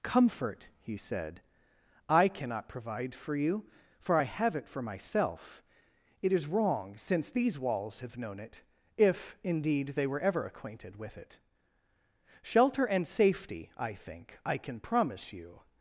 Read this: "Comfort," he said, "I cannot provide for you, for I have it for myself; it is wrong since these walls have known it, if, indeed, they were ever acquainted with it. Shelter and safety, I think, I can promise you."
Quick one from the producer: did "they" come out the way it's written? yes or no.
yes